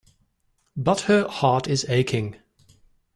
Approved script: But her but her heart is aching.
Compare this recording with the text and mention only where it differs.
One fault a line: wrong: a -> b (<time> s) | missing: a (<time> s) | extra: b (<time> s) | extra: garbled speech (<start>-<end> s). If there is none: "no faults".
missing: but her (1.3 s)